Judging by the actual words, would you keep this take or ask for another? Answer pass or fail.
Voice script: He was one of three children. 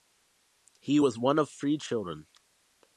pass